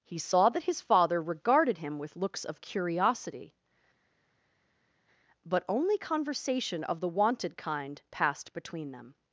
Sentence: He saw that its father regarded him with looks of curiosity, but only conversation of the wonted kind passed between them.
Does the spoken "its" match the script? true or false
false